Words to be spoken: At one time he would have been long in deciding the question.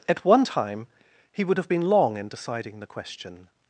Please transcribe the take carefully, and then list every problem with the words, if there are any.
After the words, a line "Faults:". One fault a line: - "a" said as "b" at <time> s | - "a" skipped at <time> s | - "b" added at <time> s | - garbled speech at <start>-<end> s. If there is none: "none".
At one time he would have been long in deciding the question.
Faults:
none